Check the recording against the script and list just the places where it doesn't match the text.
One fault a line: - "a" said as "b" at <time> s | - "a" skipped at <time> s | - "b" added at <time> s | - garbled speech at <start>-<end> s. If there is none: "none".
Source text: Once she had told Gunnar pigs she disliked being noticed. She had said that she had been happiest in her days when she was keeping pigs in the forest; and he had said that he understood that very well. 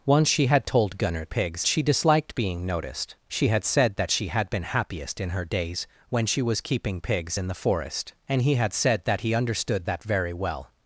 none